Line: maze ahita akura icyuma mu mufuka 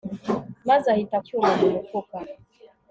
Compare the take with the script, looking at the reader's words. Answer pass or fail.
fail